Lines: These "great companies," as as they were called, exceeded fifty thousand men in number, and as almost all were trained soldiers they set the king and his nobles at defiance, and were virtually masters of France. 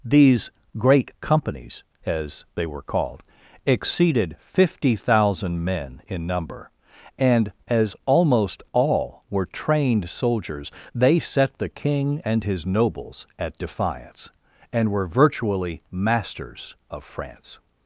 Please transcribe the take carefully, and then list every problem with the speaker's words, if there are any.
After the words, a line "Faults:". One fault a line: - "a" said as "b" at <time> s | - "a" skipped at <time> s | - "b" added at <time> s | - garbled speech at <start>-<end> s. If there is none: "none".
These "great companies," as they were called, exceeded fifty thousand men in number, and as almost all were trained soldiers they set the king and his nobles at defiance, and were virtually masters of France.
Faults:
- "as" skipped at 2.5 s